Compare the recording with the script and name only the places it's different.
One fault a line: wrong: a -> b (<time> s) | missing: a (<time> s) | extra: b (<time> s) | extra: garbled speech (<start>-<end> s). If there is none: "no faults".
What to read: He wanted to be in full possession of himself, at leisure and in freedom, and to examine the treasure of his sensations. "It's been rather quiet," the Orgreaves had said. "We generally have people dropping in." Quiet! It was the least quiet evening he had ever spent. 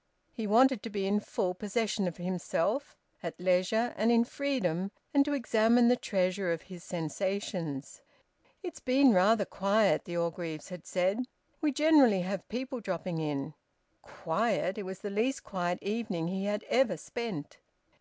no faults